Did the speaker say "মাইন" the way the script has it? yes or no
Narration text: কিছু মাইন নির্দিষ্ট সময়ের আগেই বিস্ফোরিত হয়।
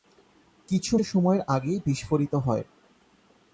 no